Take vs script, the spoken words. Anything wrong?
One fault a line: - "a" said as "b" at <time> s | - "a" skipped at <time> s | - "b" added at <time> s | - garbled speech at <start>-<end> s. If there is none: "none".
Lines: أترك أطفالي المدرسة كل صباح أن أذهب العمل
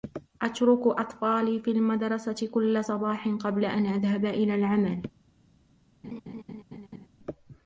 - "في" added at 1.6 s
- "قبل" added at 3.3 s
- "إلى" added at 4.3 s